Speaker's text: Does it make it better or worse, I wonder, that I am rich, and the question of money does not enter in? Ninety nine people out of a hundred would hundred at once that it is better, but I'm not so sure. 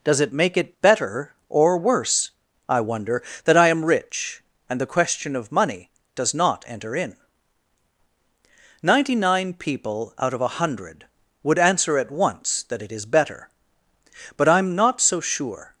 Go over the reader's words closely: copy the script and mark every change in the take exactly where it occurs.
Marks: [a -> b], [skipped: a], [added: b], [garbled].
Does it make it better or worse, I wonder, that I am rich, and the question of money does not enter in? Ninety nine people out of a hundred would [hundred -> answer] at once that it is better, but I'm not so sure.